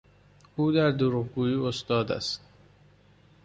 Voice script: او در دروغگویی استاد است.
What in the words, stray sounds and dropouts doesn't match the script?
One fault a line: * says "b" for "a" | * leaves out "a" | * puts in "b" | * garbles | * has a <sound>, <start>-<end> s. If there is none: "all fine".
all fine